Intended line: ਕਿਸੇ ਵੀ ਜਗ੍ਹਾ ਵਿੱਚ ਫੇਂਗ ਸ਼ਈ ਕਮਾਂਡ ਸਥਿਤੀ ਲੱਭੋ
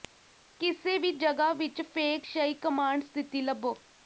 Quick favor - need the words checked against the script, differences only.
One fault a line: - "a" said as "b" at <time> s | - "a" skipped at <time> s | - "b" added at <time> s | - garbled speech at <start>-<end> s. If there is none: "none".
none